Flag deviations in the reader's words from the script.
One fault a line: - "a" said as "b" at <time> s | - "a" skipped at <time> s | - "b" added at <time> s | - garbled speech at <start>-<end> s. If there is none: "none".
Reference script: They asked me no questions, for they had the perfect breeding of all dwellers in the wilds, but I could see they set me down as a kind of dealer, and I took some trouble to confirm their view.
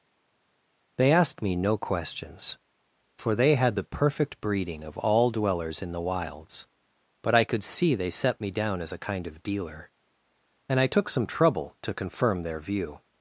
none